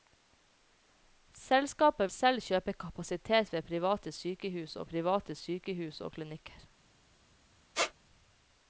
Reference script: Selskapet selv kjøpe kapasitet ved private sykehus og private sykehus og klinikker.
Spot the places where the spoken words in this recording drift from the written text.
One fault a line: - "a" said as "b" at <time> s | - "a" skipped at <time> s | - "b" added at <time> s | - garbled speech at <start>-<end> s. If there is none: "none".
none